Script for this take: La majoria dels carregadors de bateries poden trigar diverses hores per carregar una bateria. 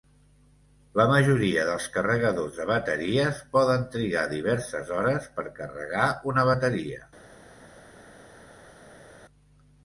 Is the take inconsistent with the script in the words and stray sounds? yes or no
no